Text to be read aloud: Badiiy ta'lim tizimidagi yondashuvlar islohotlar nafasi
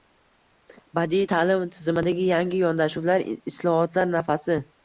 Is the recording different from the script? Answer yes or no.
yes